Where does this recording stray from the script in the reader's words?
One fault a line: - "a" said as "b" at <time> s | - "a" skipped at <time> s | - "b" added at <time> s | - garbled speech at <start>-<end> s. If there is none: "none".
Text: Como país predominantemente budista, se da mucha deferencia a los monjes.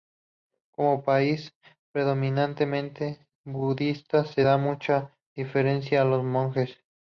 none